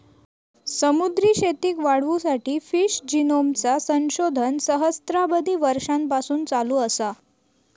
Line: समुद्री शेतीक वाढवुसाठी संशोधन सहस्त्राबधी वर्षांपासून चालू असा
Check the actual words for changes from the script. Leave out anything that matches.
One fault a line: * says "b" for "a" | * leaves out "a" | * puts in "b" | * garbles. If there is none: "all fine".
* puts in "फिश जिनोमचा"